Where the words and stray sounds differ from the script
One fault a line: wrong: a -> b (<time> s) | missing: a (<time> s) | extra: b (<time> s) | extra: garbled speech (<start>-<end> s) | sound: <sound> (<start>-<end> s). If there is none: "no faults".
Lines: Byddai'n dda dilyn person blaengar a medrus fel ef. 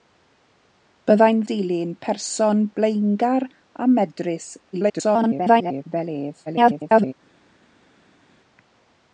missing: dda (1.4 s)
extra: garbled speech (4.7-5.8 s)
extra: garbled speech (6.5-7.1 s)